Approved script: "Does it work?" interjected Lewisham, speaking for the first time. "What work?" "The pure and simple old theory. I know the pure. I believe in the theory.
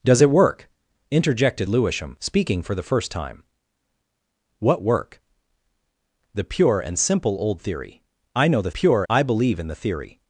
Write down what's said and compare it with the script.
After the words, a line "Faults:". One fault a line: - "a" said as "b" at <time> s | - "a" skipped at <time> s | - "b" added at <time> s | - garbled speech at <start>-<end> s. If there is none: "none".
"Does it work?" interjected Lewisham, speaking for the first time. "What work?" "The pure and simple old theory. I know the pure. I believe in the theory.
Faults:
none